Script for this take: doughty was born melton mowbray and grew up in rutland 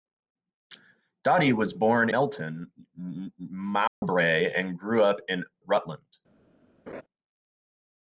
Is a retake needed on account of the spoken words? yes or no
no